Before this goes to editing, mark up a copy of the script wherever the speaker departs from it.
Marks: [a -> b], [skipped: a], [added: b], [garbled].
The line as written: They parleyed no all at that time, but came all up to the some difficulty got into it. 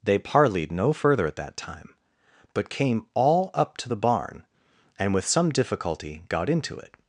They parleyed no [all -> further] at that time, but came all up to the [added: barn and with] some difficulty got into it.